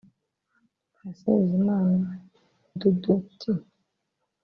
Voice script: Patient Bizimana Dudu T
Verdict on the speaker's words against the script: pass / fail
pass